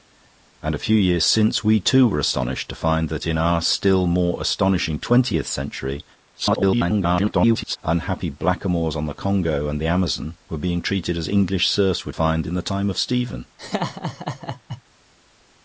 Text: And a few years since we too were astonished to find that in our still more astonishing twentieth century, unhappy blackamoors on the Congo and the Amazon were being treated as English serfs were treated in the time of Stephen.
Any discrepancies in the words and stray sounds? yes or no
yes